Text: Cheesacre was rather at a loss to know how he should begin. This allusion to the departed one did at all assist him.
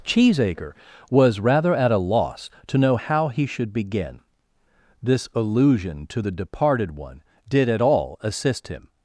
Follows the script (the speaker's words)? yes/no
yes